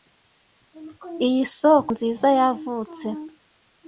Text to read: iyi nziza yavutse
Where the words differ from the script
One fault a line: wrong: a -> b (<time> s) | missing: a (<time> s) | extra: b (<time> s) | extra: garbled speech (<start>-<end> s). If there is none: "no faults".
extra: soko (1.6 s)